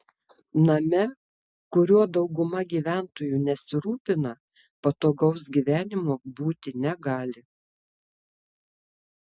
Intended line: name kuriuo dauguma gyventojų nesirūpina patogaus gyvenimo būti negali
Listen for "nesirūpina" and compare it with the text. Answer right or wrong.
right